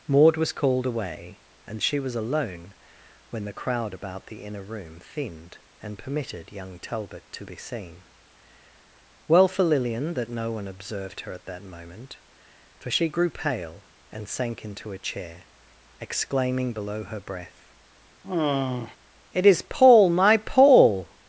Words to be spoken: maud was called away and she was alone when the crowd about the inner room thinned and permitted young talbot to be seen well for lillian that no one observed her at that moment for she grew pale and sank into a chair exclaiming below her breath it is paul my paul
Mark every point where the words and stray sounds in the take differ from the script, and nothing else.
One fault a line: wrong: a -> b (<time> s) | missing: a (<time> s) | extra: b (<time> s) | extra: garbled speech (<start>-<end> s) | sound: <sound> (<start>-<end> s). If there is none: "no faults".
sound: sigh (18.2-19.0 s)